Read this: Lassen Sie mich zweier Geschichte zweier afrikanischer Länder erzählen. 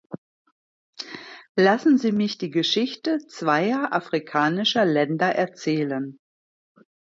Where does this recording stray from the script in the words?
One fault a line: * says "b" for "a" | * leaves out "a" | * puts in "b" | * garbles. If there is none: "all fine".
* says "die" for "zweier"